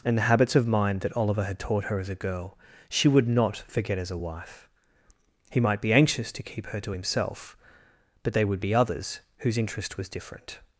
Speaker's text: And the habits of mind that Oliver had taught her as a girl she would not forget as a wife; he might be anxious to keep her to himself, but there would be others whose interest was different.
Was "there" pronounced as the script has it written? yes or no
no